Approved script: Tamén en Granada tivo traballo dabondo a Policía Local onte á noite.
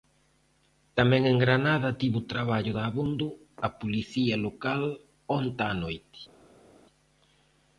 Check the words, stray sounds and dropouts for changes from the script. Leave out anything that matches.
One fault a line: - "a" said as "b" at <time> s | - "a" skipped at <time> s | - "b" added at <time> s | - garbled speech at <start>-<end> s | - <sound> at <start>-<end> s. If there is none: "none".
none